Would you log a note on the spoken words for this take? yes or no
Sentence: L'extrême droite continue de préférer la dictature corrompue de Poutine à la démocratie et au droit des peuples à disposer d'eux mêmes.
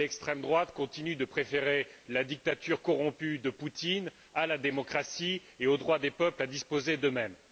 no